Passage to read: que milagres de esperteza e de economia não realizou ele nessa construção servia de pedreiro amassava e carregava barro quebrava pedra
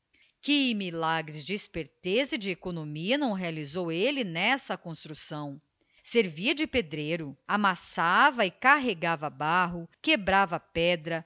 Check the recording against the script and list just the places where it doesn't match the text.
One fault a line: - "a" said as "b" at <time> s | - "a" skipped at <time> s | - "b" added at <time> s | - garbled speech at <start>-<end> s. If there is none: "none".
none